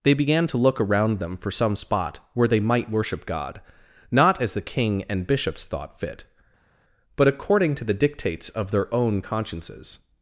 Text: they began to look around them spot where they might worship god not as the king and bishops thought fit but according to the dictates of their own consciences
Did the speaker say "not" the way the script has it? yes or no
yes